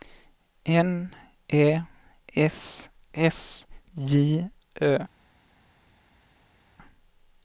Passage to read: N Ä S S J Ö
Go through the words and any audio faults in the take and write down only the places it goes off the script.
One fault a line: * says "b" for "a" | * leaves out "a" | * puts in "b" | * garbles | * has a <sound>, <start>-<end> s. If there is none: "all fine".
all fine